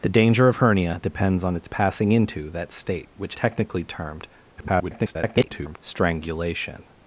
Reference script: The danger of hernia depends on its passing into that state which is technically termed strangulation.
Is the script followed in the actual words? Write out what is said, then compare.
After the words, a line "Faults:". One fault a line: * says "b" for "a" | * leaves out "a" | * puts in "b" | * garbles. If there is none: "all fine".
The danger of hernia depends on its passing into that state which technically termed [garbled] strangulation.
Faults:
* leaves out "is"
* garbles